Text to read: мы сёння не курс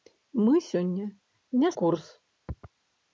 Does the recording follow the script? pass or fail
pass